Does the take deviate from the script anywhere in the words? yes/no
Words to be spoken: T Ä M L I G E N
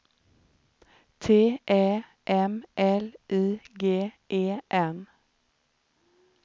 no